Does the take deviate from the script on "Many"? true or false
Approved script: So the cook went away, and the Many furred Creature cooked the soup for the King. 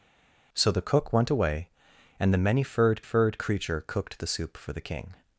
false